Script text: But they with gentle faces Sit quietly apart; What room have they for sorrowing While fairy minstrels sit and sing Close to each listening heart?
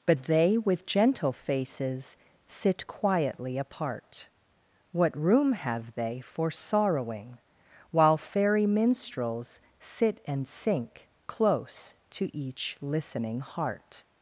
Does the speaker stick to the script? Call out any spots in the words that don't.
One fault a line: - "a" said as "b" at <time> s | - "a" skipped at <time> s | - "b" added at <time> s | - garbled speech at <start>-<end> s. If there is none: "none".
- "sing" said as "sink" at 10.5 s